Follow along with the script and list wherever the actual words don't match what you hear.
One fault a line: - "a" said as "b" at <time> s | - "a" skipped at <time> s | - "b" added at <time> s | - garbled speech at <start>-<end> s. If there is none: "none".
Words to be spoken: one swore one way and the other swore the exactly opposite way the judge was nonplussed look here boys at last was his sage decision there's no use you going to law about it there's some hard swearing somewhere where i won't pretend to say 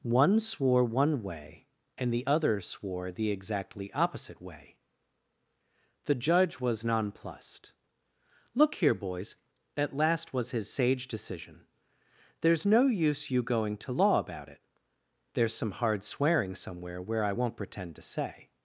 none